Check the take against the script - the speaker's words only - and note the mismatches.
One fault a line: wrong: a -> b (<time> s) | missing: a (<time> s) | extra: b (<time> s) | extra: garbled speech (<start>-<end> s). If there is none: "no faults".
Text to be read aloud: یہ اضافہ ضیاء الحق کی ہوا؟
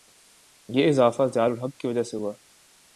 extra: وجہ سے (1.9 s)